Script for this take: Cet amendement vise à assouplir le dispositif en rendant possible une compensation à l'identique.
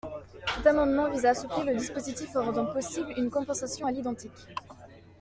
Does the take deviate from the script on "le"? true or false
false